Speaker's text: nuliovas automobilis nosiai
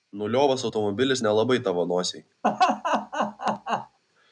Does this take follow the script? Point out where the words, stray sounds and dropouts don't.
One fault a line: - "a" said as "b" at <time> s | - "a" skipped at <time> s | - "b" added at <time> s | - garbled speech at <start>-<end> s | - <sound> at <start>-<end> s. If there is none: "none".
- "nelabai tavo" added at 1.2 s
- laugh at 2.4-4.0 s